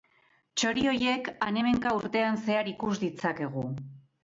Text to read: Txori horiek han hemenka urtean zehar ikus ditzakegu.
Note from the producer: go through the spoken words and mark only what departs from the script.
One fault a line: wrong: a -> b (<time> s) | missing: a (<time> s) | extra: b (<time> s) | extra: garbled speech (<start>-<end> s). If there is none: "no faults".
no faults